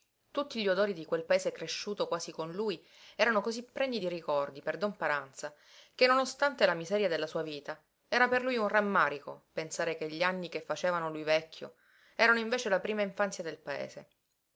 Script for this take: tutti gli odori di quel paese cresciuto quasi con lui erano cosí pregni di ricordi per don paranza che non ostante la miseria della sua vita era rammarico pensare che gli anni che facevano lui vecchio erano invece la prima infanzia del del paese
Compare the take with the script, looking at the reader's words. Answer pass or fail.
fail